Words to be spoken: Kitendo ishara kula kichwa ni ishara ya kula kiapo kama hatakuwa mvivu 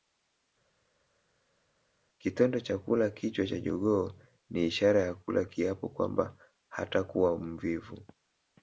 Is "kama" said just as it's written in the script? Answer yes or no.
no